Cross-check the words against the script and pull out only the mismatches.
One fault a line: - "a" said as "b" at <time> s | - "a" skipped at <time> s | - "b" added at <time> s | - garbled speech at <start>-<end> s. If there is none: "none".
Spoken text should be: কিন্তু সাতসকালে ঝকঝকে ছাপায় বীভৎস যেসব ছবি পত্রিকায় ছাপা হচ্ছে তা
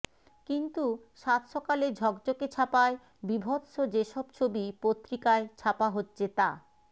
none